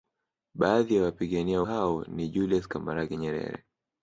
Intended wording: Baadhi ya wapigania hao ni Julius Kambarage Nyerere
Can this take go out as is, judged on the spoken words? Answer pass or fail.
pass